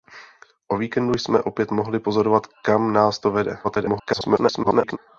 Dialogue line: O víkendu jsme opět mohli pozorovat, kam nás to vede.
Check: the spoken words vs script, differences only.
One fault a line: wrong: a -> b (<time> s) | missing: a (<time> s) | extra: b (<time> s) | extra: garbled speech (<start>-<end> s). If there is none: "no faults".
extra: garbled speech (3.6-5.0 s)